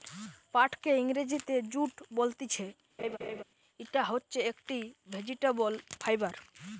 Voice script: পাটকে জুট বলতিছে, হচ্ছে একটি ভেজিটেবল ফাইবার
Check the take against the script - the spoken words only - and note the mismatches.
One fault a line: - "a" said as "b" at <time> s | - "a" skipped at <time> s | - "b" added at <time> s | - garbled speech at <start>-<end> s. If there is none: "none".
- "ইংরেজিতে" added at 1.0 s
- "ইটা" added at 3.8 s